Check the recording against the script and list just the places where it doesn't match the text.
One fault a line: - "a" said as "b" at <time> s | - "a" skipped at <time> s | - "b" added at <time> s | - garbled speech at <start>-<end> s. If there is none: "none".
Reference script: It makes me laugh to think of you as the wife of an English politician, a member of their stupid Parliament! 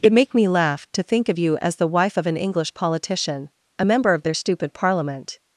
- "makes" said as "make" at 0.1 s